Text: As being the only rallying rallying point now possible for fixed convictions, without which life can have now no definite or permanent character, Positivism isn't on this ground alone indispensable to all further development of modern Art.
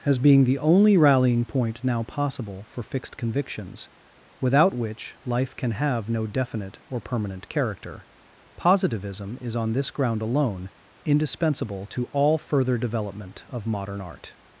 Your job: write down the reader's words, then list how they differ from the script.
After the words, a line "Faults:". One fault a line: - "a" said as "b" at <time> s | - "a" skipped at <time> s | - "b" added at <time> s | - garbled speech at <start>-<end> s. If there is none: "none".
As being the only rallying point now possible for fixed convictions, without which life can have no definite or permanent character, Positivism is on this ground alone indispensable to all further development of modern Art.
Faults:
- "rallying" skipped at 1.4 s
- "now" skipped at 6.1 s
- "isn't" said as "is" at 9.4 s